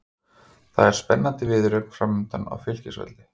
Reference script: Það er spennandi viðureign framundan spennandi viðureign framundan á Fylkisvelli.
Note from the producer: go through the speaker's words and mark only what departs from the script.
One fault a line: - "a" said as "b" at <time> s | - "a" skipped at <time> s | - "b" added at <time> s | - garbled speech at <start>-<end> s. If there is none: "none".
- "spennandi viðureign framundan" skipped at 2.5 s